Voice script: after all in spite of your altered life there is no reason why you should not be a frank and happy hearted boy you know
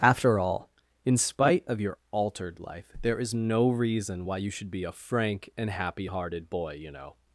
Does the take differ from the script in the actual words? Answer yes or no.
yes